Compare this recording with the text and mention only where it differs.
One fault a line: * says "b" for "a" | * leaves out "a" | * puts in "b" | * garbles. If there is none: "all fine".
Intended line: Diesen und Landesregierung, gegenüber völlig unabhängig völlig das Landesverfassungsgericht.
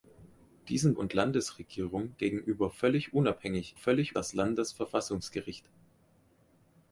all fine